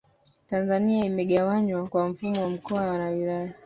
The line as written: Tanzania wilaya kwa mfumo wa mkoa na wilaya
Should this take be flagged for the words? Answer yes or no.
yes